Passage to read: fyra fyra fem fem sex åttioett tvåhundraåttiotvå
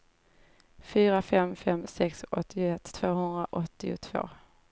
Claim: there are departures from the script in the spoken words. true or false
true